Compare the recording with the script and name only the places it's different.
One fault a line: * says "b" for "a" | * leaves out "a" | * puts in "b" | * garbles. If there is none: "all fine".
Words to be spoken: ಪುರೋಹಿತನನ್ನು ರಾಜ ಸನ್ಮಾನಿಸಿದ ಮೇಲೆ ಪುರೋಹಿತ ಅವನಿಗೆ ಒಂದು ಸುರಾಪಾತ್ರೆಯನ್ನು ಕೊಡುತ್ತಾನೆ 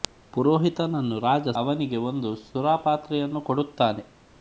* leaves out "ಸನ್ಮಾನಿಸಿದ ಮೇಲೆ ಪುರೋಹಿತ"